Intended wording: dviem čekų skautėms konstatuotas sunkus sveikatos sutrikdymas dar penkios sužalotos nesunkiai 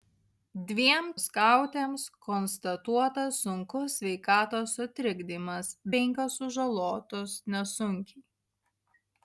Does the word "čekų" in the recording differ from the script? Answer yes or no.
yes